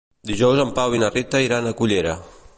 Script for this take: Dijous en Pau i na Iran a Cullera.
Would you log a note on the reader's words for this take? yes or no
yes